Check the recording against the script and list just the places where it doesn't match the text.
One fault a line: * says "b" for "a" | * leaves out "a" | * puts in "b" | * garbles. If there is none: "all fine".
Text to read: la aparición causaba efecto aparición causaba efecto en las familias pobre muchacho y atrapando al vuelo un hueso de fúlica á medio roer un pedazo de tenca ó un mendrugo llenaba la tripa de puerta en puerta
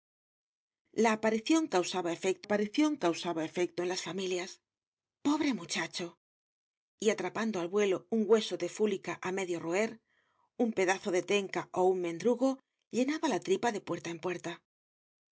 all fine